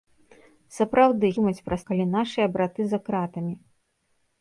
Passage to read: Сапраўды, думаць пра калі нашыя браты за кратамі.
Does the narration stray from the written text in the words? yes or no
no